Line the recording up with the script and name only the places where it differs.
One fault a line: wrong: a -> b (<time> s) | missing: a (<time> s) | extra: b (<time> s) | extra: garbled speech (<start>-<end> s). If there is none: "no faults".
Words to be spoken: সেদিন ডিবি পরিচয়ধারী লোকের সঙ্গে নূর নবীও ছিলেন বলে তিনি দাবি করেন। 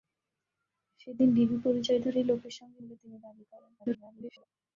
missing: নূর নবীও ছিলেন (2.8 s)
extra: garbled speech (3.8-4.5 s)